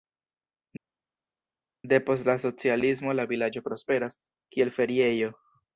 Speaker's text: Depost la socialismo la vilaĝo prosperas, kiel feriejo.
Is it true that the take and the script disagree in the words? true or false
false